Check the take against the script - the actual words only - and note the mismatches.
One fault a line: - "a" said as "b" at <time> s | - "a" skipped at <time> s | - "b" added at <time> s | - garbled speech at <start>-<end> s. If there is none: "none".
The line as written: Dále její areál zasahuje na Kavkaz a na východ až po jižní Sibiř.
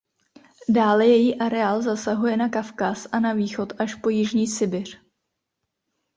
none